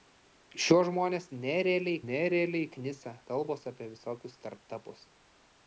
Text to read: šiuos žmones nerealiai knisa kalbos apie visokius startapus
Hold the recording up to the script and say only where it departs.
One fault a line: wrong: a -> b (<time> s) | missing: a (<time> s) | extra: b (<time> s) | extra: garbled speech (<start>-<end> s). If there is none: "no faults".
extra: nerealiai (2.1 s)